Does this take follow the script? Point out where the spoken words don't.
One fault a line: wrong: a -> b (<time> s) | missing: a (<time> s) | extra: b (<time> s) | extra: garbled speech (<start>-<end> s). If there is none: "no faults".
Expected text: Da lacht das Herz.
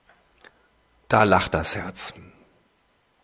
no faults